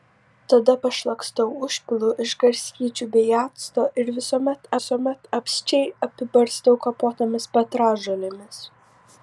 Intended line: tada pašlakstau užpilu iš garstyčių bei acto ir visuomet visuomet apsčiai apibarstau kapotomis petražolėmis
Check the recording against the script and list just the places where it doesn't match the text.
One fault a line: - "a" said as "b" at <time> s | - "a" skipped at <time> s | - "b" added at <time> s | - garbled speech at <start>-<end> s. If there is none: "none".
none